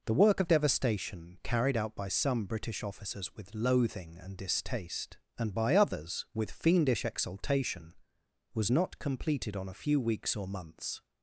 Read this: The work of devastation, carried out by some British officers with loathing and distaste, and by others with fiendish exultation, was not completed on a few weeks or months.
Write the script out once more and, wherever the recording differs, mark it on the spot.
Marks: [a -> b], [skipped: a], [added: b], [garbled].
The work of devastation, carried out by some British officers with loathing and distaste, and by others with fiendish exultation, was not completed on a few weeks or months.